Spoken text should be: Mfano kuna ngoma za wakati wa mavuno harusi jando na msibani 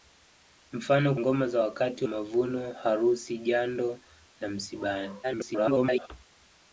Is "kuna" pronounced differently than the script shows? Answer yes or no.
yes